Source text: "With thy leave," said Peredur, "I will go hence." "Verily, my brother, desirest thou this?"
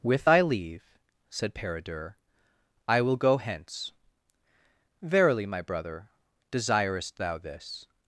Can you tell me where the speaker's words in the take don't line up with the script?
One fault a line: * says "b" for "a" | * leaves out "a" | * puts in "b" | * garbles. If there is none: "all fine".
all fine